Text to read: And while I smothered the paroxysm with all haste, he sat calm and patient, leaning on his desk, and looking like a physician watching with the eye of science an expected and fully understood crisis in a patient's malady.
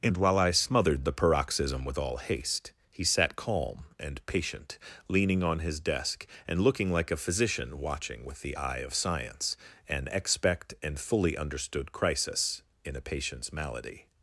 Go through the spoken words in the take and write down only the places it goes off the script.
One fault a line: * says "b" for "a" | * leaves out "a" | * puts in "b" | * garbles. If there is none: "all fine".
* says "expect" for "expected"